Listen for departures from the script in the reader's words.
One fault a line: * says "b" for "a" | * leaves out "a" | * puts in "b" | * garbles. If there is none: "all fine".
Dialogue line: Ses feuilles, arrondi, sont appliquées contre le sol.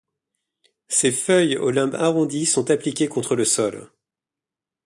* puts in "au limbe"